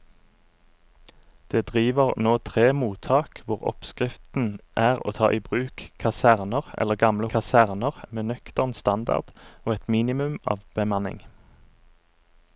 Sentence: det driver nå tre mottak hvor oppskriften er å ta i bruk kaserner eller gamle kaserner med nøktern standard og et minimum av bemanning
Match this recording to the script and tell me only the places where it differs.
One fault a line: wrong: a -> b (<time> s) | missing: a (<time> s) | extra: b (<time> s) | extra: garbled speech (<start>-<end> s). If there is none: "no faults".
no faults